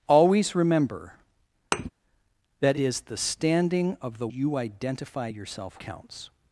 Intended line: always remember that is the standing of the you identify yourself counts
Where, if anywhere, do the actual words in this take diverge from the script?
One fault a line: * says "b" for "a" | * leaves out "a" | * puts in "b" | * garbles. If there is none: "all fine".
all fine